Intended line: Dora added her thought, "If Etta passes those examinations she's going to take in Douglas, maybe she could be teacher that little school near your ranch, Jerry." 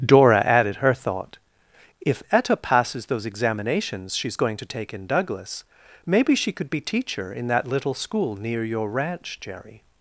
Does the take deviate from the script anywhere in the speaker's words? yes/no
yes